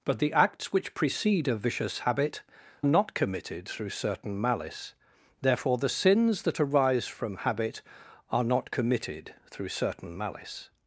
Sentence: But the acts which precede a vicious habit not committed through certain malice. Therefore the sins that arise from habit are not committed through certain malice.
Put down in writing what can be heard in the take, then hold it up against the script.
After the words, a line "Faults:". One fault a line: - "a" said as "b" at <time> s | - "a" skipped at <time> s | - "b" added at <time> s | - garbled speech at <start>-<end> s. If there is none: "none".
But the acts which precede a vicious habit not committed through certain malice. Therefore the sins that arise from habit are not committed through certain malice.
Faults:
none